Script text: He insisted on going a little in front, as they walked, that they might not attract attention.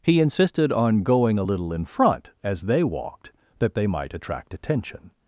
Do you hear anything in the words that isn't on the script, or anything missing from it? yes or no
yes